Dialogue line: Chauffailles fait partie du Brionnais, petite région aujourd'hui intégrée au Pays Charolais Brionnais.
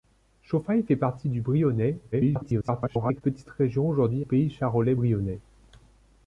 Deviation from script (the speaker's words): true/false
true